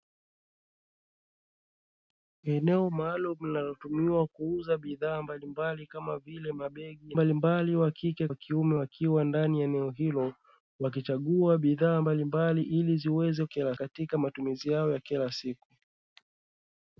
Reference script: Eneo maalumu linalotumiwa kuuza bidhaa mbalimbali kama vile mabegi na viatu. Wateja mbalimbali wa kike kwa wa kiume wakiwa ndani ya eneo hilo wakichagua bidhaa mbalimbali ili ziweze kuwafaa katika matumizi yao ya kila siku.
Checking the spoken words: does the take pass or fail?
fail